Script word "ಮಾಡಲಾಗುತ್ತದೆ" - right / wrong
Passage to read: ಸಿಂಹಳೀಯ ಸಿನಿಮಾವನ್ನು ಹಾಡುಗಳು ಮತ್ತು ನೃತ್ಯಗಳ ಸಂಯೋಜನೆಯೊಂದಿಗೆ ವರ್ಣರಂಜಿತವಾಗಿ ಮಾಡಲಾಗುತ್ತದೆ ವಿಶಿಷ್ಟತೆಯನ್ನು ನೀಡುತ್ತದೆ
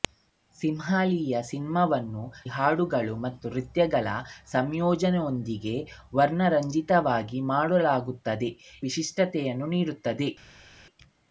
right